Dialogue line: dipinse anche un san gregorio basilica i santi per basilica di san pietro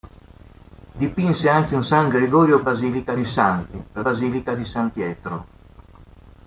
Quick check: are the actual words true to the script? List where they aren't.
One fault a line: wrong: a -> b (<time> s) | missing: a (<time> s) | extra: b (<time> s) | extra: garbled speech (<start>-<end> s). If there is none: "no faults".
no faults